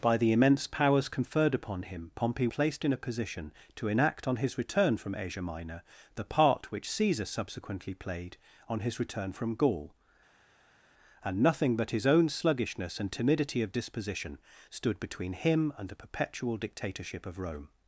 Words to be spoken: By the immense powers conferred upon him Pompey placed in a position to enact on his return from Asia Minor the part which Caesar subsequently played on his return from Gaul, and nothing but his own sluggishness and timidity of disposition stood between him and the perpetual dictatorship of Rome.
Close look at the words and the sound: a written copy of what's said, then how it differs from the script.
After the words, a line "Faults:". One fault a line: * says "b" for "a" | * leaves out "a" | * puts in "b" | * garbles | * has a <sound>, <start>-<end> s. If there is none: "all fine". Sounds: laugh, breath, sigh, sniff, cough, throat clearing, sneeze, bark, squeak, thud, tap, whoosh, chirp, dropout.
By the immense powers conferred upon him Pompey placed in a position to enact on his return from Asia Minor the part which Caesar subsequently played on his return from Gaul, and nothing but his own sluggishness and timidity of disposition stood between him and the perpetual dictatorship of Rome.
Faults:
all fine